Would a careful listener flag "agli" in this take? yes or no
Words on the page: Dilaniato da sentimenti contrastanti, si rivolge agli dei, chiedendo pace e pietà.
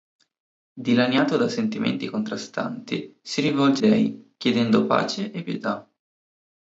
yes